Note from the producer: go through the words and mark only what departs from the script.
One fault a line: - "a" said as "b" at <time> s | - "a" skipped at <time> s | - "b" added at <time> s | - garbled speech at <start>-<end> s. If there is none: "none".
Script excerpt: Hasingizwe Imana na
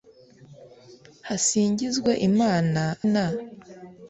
none